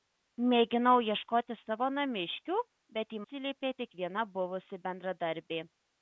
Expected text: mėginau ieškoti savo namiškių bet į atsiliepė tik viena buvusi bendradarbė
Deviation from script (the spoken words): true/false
false